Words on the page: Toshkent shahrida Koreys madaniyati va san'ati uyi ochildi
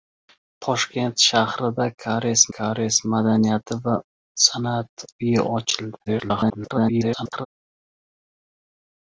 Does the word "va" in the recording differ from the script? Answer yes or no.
no